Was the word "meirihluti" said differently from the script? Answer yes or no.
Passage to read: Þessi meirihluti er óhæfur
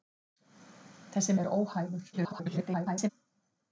yes